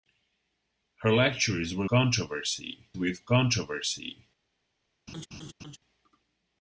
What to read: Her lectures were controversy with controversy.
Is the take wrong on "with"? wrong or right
right